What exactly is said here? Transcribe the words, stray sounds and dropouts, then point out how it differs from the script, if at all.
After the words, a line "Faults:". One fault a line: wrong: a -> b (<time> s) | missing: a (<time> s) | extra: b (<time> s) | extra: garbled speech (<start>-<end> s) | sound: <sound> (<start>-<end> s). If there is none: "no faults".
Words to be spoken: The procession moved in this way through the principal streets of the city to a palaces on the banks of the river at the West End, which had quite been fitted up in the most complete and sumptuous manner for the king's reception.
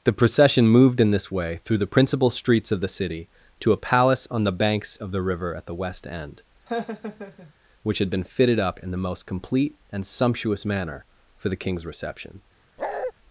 The procession moved in this way through the principal streets of the city to a palace on the banks of the river at the West End, which had been fitted up in the most complete and sumptuous manner for the king's reception.
Faults:
wrong: palaces -> palace (3.8 s)
sound: laugh (6.7-7.5 s)
missing: quite (8.1 s)
sound: bark (12.8-13.1 s)